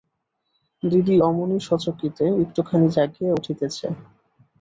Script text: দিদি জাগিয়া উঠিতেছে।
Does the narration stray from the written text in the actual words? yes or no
yes